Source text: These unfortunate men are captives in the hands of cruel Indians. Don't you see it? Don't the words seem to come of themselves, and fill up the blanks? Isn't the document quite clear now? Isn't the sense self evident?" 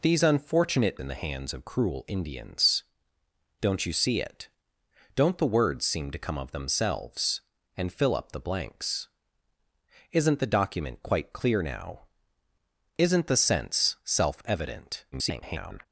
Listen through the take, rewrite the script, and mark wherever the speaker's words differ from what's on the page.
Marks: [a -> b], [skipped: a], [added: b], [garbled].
These unfortunate [skipped: men are captives] in the hands of cruel Indians. Don't you see it? Don't the words seem to come of themselves, and fill up the blanks? Isn't the document quite clear now? Isn't the sense self evident?" [garbled]